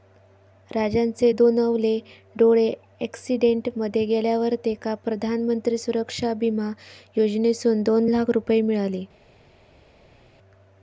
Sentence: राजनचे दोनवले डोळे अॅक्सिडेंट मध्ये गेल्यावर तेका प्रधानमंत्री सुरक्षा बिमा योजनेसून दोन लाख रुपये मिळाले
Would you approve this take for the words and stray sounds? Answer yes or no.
yes